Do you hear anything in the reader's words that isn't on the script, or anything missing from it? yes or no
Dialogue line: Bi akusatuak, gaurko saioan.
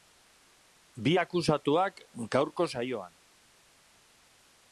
no